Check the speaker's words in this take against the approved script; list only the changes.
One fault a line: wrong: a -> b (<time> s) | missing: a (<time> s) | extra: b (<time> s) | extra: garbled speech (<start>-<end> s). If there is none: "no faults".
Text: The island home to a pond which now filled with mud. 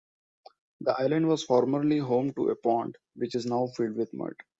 extra: was formerly (1.3 s)
extra: is (3.3 s)